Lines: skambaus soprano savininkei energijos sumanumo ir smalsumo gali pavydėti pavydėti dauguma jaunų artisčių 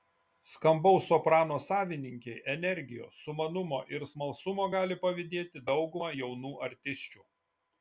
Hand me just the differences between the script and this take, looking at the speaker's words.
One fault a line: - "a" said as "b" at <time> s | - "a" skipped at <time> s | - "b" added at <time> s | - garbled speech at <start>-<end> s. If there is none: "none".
- "pavydėti" skipped at 5.7 s